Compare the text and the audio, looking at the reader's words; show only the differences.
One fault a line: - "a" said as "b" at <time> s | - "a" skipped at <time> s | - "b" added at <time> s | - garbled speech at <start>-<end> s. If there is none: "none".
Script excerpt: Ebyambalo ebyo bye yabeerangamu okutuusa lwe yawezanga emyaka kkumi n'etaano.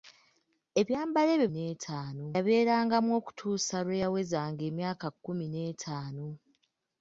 - "bye" said as "n'etaano" at 1.5 s